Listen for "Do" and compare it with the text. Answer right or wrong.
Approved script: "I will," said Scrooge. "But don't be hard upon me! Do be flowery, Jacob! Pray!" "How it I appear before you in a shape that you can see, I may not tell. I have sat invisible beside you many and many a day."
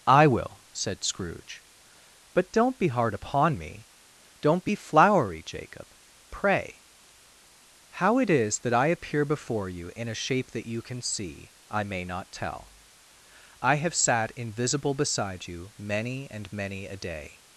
wrong